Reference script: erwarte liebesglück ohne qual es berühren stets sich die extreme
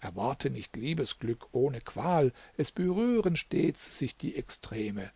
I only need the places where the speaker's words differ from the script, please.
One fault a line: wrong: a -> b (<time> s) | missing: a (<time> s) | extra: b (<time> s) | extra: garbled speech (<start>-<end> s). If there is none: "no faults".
extra: nicht (0.5 s)